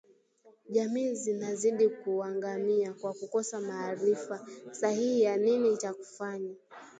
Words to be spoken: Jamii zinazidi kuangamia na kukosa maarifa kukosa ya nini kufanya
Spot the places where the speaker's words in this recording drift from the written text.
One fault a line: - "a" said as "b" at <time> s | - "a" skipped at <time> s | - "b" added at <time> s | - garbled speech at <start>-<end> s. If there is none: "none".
- "na" said as "kwa" at 2.9 s
- "kukosa" said as "sahihi" at 4.7 s
- "cha" added at 5.8 s